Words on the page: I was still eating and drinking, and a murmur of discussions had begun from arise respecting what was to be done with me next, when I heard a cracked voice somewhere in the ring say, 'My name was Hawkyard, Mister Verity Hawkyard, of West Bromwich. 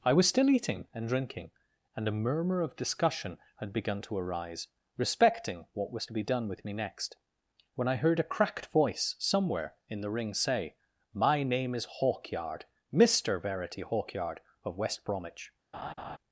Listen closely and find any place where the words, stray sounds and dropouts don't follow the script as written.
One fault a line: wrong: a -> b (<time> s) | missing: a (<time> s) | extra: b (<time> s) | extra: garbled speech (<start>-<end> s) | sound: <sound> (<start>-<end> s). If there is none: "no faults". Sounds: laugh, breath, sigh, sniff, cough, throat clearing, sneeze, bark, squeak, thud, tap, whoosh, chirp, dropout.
wrong: discussions -> discussion (2.8 s)
wrong: from -> to (4.0 s)
wrong: was -> is (11.7 s)
sound: laugh (15.7-16.2 s)